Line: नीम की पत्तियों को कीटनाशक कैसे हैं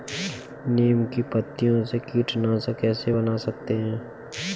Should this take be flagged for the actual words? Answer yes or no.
yes